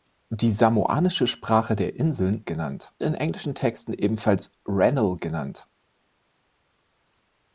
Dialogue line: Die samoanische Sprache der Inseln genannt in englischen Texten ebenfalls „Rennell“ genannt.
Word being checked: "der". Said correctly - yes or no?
yes